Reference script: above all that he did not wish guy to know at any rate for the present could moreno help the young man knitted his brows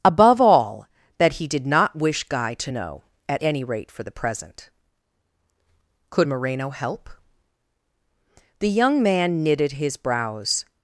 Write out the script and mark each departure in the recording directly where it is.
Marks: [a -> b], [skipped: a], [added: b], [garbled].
above all that he did not wish guy to know at any rate for the present could moreno help the young man knitted his brows